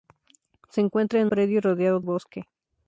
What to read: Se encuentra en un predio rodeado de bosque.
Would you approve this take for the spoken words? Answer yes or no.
no